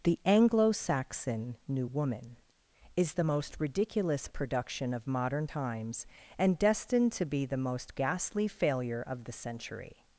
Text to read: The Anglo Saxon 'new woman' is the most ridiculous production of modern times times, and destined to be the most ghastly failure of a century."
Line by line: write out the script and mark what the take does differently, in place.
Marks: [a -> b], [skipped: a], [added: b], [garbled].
The Anglo Saxon 'new woman' is the most ridiculous production of modern times [skipped: times,] and destined to be the most ghastly failure of [a -> the] century."